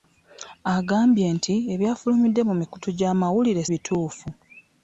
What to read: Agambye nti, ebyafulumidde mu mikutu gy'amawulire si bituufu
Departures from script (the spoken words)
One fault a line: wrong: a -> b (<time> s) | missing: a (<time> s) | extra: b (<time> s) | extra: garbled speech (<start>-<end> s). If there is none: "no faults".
missing: si (3.6 s)